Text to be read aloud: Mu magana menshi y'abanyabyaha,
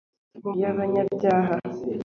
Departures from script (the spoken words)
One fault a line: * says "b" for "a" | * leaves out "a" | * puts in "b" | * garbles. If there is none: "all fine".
* leaves out "magana menshi"